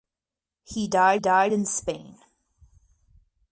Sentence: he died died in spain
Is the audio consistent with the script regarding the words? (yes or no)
yes